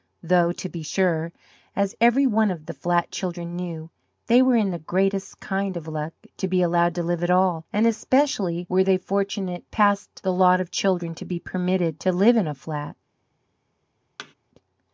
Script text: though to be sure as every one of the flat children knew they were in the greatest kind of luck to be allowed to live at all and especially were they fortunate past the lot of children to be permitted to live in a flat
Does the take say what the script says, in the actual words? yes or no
yes